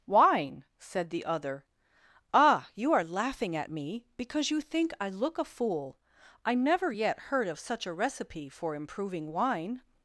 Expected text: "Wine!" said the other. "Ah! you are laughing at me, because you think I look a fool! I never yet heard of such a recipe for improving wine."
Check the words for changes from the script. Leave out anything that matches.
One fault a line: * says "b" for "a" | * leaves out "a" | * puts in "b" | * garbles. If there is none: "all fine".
all fine